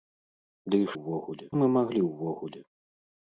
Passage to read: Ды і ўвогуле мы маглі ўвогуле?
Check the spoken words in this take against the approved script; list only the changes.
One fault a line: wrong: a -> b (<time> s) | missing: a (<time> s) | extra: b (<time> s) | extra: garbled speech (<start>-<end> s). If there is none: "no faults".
no faults